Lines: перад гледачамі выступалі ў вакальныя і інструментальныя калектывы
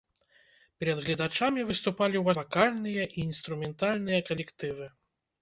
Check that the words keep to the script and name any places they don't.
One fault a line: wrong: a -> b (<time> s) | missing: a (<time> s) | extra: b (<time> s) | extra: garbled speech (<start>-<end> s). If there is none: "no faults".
no faults